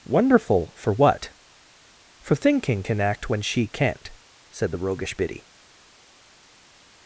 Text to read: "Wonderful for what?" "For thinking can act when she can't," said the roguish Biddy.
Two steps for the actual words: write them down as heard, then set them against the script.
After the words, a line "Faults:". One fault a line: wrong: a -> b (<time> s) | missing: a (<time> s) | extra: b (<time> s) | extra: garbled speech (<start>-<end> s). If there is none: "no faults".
"Wonderful for what?" "For thinking can act when she can't," said the roguish Biddy.
Faults:
no faults